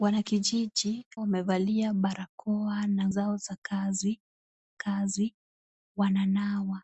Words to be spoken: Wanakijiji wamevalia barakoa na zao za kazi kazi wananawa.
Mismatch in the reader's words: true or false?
false